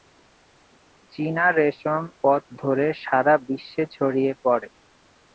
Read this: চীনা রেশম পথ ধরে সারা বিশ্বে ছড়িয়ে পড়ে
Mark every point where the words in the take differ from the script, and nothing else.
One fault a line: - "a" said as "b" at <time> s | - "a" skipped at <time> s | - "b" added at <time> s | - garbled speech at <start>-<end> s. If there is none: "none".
none